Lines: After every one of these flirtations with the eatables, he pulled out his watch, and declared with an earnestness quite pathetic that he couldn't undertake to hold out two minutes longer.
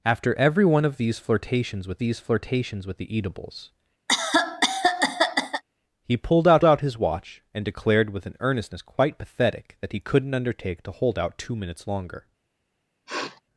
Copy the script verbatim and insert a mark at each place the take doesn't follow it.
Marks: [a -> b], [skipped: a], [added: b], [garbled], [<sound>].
After every one of these flirtations with [added: these flirtations with] the eatables, [cough] he pulled out [added: out] his watch, and declared with an earnestness quite pathetic that he couldn't undertake to hold out two minutes longer. [sniff]